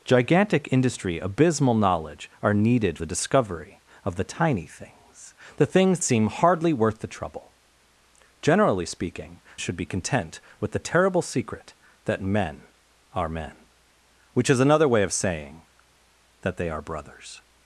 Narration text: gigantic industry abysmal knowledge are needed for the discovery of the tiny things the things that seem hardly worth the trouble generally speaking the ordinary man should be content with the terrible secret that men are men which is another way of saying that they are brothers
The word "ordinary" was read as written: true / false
false